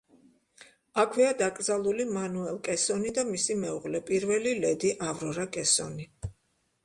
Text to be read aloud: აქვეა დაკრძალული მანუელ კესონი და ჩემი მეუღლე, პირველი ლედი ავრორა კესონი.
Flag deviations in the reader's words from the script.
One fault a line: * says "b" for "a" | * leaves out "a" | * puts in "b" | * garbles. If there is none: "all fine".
* says "მისი" for "ჩემი"